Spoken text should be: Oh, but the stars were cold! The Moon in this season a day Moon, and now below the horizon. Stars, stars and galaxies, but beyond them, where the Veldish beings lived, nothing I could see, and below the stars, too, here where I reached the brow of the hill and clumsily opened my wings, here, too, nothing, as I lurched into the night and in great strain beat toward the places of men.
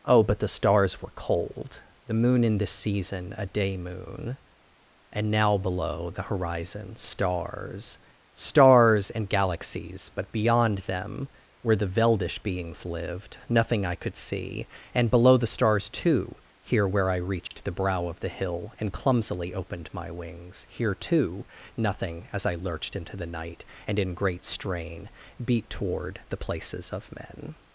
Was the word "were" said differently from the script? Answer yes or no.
no